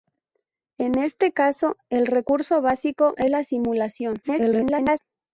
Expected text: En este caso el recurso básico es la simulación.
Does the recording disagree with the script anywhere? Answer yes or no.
yes